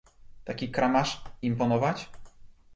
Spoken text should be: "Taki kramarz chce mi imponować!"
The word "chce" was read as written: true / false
false